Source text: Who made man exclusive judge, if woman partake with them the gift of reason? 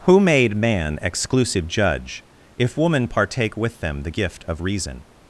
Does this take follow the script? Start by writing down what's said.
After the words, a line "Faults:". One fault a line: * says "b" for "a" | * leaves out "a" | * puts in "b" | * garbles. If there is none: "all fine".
Who made man exclusive judge, if woman partake with them the gift of reason?
Faults:
all fine